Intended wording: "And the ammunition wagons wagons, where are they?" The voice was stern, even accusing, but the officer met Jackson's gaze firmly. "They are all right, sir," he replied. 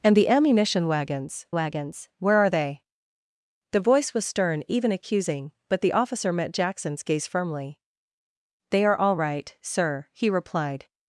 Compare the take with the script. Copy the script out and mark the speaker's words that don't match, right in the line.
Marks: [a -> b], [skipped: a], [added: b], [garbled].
"And the ammunition wagons wagons, where are they?" The voice was stern, even accusing, but the officer met Jackson's gaze firmly. "They are all right, sir," he replied.